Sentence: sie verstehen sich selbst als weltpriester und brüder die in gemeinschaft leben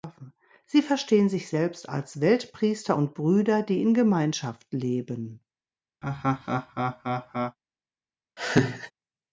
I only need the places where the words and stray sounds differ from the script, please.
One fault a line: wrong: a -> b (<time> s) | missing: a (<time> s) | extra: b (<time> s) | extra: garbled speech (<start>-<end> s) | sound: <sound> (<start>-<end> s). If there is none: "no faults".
sound: laugh (6.0-7.6 s)
sound: laugh (8.4-8.9 s)